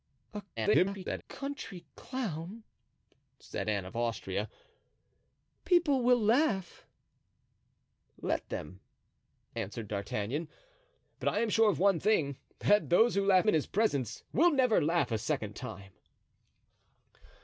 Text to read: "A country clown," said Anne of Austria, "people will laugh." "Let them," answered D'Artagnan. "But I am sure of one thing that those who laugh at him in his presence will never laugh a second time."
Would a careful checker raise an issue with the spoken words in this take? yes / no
yes